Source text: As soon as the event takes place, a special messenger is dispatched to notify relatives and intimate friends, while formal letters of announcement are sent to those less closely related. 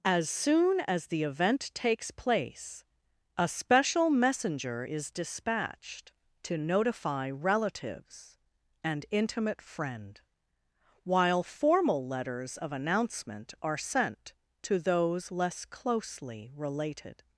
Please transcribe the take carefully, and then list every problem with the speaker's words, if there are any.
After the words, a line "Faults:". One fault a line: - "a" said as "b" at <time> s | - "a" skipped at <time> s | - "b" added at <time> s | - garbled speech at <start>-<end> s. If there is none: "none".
As soon as the event takes place, a special messenger is dispatched to notify relatives and intimate friend, while formal letters of announcement are sent to those less closely related.
Faults:
- "friends" said as "friend" at 9.6 s